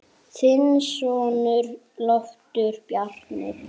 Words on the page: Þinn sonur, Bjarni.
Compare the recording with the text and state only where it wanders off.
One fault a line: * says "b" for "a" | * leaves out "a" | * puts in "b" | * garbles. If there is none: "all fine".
* puts in "Loftur"